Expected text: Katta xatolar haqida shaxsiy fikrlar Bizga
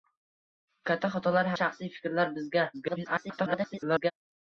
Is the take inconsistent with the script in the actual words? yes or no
yes